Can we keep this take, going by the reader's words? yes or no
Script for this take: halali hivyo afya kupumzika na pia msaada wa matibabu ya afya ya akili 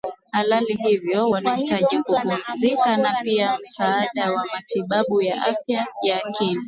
no